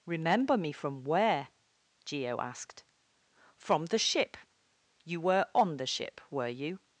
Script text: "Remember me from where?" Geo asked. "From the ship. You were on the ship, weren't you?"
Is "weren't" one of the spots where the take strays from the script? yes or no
yes